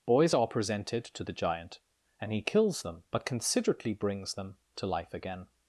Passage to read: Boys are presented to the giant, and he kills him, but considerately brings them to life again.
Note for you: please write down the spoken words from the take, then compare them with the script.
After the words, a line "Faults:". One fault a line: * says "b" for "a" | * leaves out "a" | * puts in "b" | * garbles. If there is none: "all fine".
Boys are presented to the giant, and he kills them, but considerately brings them to life again.
Faults:
* says "them" for "him"